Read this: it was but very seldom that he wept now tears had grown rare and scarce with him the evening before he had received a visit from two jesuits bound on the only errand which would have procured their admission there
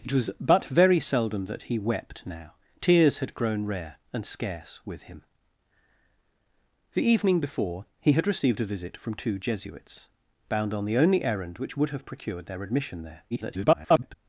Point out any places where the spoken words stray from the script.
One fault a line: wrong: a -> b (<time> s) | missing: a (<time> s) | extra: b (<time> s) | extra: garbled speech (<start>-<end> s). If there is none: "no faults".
extra: garbled speech (13.3-14.2 s)